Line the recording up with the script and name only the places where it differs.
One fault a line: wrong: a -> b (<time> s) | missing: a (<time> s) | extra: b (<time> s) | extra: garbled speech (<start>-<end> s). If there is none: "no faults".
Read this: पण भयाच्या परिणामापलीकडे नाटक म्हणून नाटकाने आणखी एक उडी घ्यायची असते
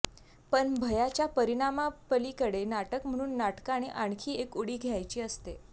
no faults